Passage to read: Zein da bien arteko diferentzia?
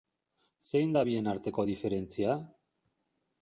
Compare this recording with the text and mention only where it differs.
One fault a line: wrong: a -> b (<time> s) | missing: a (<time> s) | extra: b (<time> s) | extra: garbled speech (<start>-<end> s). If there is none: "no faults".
no faults